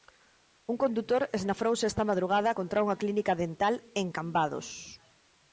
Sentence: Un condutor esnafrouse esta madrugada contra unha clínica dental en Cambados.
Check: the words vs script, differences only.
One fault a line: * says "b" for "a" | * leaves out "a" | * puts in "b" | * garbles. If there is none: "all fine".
all fine